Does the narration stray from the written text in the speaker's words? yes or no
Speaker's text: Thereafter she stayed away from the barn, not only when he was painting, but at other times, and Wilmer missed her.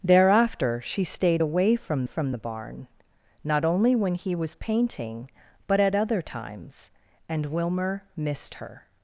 yes